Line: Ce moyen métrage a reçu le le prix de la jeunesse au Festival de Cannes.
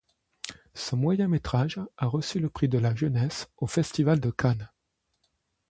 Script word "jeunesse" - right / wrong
right